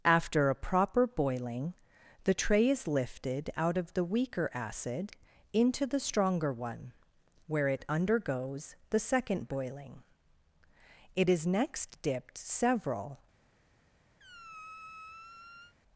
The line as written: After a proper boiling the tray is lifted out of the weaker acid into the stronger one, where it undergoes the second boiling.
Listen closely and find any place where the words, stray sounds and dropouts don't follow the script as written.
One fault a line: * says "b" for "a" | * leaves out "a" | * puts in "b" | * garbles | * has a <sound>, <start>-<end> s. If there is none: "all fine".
* puts in "It is next dipped several"
* has a squeak, 14.2-15.7 s